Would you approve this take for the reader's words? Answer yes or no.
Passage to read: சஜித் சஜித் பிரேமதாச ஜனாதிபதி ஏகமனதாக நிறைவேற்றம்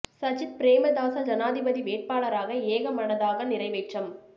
no